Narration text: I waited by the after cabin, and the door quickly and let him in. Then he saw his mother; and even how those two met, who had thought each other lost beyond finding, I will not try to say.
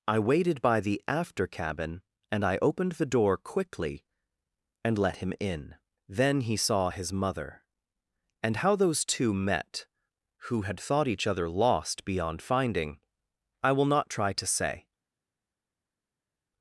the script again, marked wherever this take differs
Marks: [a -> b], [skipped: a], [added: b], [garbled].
I waited by the after cabin, and [added: I opened] the door quickly and let him in. Then he saw his mother; and [skipped: even] how those two met, who had thought each other lost beyond finding, I will not try to say.